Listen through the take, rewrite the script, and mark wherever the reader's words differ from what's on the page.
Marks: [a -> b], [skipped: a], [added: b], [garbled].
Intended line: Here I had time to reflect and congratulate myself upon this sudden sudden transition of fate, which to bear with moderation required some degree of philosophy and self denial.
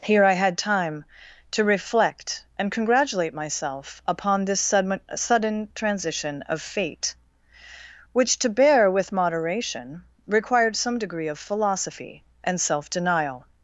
Here I had time to reflect and congratulate myself upon this sudden sudden transition of fate, which to bear with moderation required some degree of philosophy and self denial.